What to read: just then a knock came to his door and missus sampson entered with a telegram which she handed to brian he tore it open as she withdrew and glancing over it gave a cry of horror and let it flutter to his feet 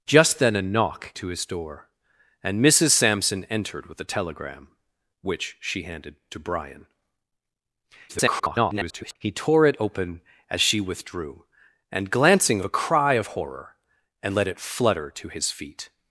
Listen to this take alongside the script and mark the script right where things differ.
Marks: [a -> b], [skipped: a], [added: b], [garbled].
just then a knock [skipped: came] to his door and missus sampson entered with a telegram which she handed to brian [garbled] he tore it open as she withdrew and glancing [skipped: over it gave] a cry of horror and let it flutter to his feet